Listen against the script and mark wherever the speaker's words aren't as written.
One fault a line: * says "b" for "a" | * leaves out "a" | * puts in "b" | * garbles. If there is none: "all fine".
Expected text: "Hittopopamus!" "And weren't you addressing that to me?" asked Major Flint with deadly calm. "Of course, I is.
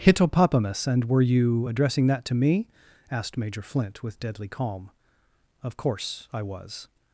* says "were" for "weren't"
* says "was" for "is"